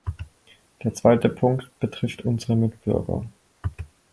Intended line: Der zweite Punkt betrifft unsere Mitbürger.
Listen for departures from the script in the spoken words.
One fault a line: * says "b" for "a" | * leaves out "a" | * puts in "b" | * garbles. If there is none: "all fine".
all fine